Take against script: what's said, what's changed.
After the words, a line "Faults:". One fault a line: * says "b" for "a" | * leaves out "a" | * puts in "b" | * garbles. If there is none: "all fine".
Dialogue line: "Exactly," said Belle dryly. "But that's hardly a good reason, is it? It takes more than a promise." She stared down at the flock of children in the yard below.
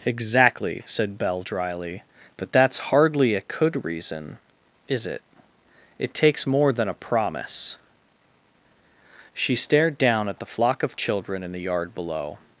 "Exactly," said Belle dryly. "But that's hardly a could reason, is it? It takes more than a promise." She stared down at the flock of children in the yard below.
Faults:
* says "could" for "good"